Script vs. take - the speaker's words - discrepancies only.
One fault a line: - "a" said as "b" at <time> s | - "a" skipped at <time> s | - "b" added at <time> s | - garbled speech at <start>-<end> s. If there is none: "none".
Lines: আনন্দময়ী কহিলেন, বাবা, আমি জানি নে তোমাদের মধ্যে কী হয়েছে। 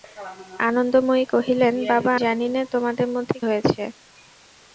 - "আমি" skipped at 2.1 s
- "কী" skipped at 3.4 s